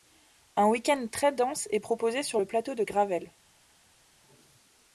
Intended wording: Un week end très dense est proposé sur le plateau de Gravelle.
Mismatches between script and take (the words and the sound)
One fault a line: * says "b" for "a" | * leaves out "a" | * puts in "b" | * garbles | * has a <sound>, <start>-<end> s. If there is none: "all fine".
all fine